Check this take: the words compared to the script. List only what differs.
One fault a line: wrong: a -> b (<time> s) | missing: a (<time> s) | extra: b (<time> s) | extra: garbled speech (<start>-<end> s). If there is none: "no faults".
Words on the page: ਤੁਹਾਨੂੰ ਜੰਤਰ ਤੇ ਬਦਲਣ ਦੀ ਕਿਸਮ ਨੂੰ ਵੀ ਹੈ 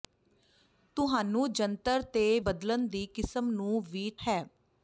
no faults